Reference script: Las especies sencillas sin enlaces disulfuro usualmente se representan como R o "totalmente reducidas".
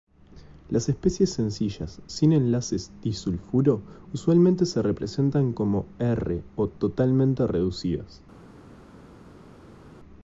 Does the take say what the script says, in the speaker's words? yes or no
yes